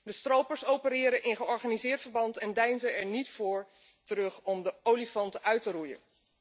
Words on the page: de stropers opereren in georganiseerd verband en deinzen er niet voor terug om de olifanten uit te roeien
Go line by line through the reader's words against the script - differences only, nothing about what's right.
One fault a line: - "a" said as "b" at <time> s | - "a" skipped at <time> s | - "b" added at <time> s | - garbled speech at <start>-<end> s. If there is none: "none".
none